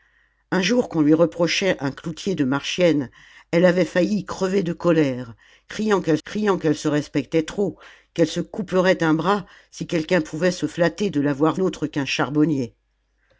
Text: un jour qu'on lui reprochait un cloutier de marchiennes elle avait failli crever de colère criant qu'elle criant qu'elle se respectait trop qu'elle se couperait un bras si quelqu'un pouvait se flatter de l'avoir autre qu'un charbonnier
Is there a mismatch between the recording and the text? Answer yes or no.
no